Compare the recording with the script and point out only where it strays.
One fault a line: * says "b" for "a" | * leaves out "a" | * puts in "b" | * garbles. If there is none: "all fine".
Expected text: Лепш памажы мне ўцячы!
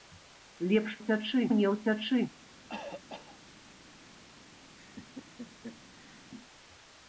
* says "ўцячы" for "памажы"